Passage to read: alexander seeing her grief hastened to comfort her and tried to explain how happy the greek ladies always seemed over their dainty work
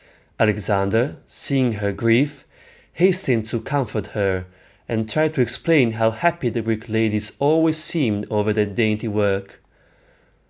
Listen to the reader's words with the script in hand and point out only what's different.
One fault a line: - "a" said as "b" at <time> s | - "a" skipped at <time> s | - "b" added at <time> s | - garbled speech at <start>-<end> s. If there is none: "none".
none